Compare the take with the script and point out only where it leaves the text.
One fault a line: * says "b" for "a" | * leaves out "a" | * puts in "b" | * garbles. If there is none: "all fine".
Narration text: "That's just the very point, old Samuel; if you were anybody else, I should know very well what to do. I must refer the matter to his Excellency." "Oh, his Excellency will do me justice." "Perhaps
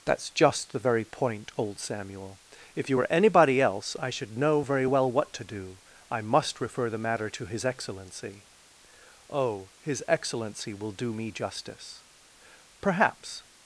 all fine